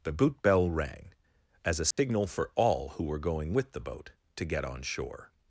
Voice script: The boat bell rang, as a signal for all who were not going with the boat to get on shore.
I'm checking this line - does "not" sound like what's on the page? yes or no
no